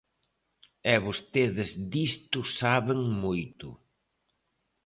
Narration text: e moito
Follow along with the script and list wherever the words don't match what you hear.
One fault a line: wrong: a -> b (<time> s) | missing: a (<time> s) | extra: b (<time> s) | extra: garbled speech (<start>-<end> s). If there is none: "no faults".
extra: vostedes disto saben (1.1 s)